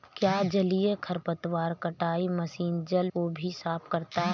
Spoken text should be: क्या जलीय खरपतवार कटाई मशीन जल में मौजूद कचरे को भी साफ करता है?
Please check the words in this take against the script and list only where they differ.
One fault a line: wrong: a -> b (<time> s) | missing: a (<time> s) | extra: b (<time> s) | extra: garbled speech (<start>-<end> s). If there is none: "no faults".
missing: में मौजूद कचरे (3.1 s)